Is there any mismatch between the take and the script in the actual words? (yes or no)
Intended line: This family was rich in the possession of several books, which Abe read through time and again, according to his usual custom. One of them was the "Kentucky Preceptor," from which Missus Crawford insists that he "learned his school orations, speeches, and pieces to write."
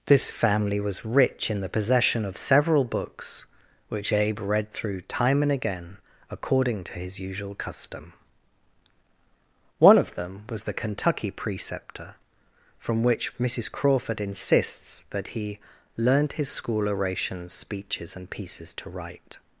no